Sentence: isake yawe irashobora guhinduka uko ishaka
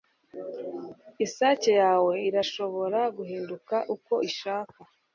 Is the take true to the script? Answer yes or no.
yes